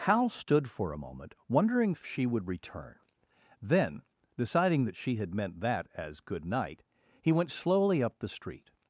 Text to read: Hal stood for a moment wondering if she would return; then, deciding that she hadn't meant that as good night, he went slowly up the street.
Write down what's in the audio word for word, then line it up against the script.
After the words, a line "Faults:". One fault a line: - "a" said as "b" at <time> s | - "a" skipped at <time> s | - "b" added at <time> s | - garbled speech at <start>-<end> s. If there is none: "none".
Hal stood for a moment wondering if she would return; then, deciding that she had meant that as good night, he went slowly up the street.
Faults:
- "hadn't" said as "had" at 5.1 s